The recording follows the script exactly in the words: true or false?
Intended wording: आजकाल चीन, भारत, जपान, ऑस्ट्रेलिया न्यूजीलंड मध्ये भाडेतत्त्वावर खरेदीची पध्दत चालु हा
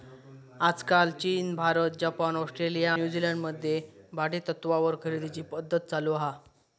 true